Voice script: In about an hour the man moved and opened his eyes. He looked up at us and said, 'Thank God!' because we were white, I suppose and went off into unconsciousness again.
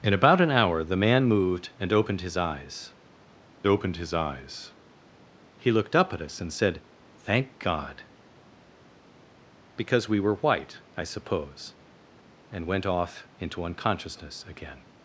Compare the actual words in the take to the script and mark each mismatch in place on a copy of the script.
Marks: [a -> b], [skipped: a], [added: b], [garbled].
In about an hour the man moved and opened his eyes. [added: opened his eyes] He looked up at us and said, 'Thank God!' because we were white, I suppose and went off into unconsciousness again.